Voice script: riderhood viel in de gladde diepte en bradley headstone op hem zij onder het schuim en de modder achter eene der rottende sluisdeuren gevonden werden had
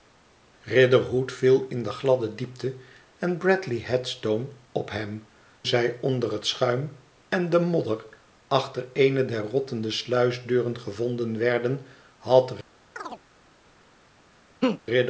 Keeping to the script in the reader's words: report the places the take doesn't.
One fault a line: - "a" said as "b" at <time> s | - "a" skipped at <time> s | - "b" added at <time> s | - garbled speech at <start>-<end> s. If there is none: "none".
none